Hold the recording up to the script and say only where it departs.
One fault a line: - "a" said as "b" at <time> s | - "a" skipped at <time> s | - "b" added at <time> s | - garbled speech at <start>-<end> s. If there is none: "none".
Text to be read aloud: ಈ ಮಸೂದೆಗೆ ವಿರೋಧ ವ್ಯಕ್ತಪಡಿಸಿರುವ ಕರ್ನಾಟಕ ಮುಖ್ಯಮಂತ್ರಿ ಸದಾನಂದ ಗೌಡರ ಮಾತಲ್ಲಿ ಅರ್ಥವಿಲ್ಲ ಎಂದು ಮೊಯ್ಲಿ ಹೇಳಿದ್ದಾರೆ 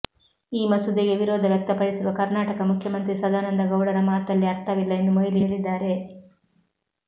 none